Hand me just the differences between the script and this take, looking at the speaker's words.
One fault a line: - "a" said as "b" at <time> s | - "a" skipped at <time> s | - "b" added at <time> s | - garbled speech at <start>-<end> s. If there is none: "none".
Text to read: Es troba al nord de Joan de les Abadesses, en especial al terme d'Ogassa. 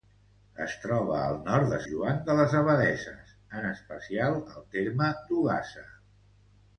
none